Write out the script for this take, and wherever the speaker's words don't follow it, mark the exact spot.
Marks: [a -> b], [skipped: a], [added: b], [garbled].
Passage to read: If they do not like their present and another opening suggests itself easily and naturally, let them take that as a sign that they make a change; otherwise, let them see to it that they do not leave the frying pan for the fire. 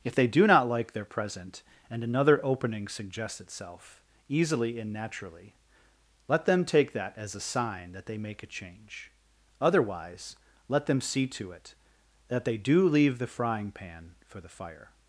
If they do not like their present and another opening suggests itself easily and naturally, let them take that as a sign that they make a change; otherwise, let them see to it that they do [skipped: not] leave the frying pan for the fire.